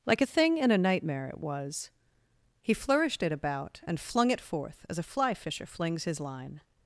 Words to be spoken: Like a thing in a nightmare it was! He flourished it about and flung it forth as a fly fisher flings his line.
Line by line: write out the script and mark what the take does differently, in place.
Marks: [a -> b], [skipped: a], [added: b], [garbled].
Like a thing in a nightmare it was! He flourished it about and flung it forth as a fly fisher flings his line.